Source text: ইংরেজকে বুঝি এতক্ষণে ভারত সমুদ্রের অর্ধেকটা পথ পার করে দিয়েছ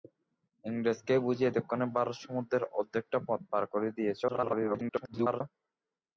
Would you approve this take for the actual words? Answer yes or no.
no